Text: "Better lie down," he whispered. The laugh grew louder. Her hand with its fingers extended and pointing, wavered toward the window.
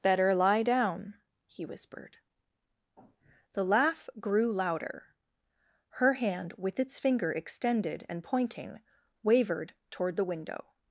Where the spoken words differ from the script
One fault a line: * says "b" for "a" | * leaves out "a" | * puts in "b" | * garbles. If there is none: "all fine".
* says "finger" for "fingers"